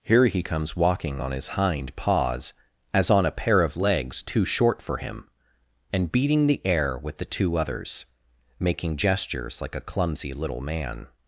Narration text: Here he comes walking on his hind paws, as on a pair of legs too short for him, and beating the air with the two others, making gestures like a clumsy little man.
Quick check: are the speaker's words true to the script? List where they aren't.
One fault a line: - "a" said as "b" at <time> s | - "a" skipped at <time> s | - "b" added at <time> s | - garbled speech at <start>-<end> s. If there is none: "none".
none